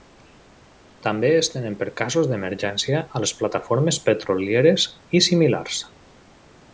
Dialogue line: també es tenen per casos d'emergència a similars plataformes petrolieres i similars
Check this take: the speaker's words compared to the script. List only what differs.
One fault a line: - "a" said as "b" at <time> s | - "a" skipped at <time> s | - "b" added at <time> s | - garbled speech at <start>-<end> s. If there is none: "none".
- "similars" said as "les" at 3.2 s